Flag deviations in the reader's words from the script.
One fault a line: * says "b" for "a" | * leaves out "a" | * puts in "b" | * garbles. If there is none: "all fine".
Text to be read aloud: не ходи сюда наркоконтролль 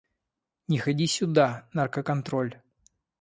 all fine